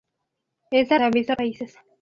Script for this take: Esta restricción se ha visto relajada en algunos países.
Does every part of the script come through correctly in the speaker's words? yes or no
no